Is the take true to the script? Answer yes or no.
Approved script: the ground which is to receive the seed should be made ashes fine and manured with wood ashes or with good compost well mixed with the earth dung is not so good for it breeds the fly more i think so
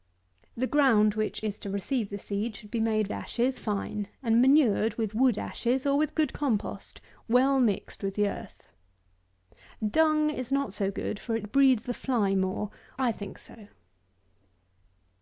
yes